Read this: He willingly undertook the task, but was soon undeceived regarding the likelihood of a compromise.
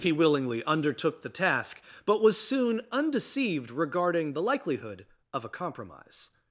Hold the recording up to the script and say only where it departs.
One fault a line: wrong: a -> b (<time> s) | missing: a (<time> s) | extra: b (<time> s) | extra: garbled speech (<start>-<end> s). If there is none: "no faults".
no faults